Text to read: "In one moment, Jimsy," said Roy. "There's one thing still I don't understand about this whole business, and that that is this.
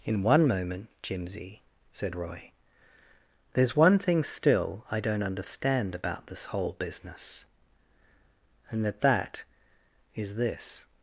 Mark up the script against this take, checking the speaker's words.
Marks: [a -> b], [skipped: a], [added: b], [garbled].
"In one moment, Jimsy," said Roy. "There's one thing still I don't understand about this whole business, and that that is this.